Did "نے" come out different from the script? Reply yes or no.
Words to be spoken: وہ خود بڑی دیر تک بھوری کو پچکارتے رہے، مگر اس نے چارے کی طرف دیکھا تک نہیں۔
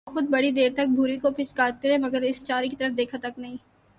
yes